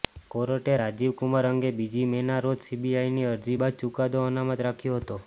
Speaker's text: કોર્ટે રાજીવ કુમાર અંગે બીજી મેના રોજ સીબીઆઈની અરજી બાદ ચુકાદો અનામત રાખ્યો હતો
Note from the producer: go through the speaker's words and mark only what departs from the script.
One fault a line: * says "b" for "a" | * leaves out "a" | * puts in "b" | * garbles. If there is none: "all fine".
all fine